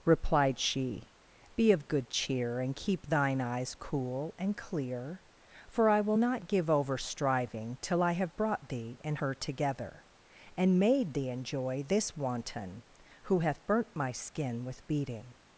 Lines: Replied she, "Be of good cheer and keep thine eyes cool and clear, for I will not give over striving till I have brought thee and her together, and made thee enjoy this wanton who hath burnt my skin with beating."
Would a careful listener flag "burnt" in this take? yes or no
no